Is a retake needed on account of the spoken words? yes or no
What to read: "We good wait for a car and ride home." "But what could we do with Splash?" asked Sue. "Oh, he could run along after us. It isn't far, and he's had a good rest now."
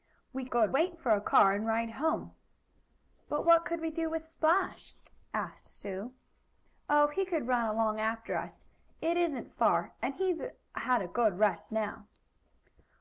no